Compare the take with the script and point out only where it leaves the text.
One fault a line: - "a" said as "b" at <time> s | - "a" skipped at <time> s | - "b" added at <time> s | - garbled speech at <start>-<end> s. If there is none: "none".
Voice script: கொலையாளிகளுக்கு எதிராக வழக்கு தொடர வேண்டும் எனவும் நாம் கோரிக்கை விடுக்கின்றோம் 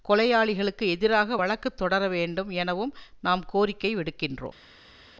none